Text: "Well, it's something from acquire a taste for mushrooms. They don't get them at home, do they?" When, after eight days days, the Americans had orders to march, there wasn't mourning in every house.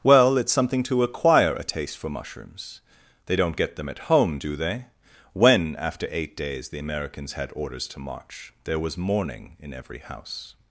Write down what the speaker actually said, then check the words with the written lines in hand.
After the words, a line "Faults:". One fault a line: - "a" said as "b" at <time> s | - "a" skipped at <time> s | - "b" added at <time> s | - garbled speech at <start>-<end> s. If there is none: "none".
"Well, it's something to acquire a taste for mushrooms. They don't get them at home, do they?" When, after eight days, the Americans had orders to march, there was mourning in every house.
Faults:
- "from" said as "to" at 0.8 s
- "days" skipped at 6.7 s
- "wasn't" said as "was" at 8.8 s